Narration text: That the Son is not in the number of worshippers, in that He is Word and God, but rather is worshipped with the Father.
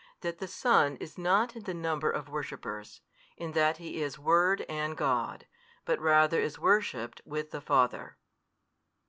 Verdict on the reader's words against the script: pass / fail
pass